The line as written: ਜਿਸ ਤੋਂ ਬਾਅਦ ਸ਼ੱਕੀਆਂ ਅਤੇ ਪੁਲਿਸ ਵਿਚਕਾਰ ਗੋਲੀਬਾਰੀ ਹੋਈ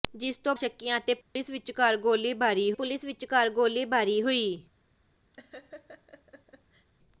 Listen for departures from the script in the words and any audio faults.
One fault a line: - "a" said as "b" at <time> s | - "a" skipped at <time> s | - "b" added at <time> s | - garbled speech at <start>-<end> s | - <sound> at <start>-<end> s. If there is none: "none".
- "ਬਾਅਦ" skipped at 0.5 s
- dropout at 1.2-1.4 s
- "ਪੁਲਿਸ ਵਿਚਕਾਰ ਗੋਲੀਬਾਰੀ" added at 2.7 s
- laugh at 5.3-6.9 s